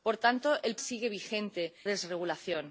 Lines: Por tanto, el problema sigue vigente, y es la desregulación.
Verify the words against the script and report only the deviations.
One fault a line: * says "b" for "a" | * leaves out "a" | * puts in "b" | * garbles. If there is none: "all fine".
* leaves out "problema"
* leaves out "y es la"